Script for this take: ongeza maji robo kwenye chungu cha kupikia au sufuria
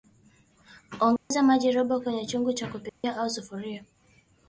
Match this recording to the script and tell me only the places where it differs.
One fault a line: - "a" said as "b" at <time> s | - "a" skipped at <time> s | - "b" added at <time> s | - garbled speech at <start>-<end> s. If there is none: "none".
none